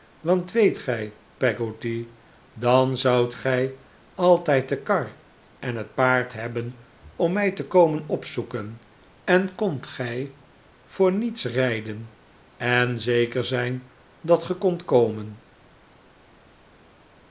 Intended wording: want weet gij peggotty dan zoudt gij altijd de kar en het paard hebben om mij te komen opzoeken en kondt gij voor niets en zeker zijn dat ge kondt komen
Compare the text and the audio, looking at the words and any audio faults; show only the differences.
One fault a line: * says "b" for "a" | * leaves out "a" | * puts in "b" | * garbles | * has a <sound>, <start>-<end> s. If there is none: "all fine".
* puts in "rijden"